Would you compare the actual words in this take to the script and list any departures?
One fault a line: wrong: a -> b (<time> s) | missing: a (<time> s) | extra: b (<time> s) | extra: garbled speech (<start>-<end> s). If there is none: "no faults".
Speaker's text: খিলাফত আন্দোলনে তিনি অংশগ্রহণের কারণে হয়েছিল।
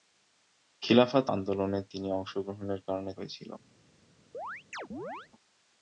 no faults